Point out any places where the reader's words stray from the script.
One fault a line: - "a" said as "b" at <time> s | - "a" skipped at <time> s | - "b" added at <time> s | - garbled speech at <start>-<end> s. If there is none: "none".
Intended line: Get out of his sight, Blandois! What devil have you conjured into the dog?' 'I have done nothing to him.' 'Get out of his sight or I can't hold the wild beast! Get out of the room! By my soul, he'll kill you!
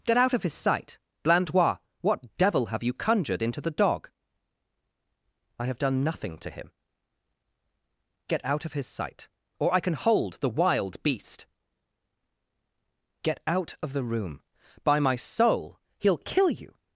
- "can't" said as "can" at 9.8 s